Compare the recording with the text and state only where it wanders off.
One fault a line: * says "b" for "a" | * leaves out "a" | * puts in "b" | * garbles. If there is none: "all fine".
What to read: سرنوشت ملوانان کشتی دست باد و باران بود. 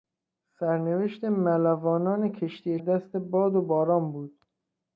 all fine